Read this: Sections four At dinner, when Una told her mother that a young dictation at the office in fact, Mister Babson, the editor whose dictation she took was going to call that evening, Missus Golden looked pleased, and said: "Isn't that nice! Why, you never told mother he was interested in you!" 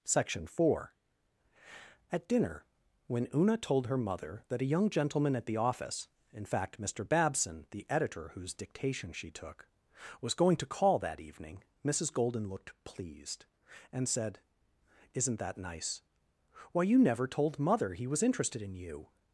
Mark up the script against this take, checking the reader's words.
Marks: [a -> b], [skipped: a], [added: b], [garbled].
[Sections -> Section] four At dinner, when Una told her mother that a young [dictation -> gentleman] at the office in fact, Mister Babson, the editor whose dictation she took was going to call that evening, Missus Golden looked pleased, and said: "Isn't that nice! Why, you never told mother he was interested in you!"